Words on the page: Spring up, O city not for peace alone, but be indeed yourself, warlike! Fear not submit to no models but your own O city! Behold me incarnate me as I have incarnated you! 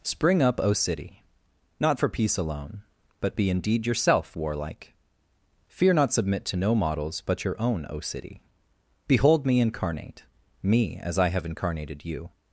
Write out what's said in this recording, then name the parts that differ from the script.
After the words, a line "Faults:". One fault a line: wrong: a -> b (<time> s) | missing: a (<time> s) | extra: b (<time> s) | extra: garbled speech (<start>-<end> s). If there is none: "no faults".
Spring up, O city not for peace alone, but be indeed yourself, warlike! Fear not submit to no models but your own O city! Behold me incarnate me as I have incarnated you!
Faults:
no faults